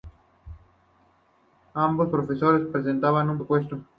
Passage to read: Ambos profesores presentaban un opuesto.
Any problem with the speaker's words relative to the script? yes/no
no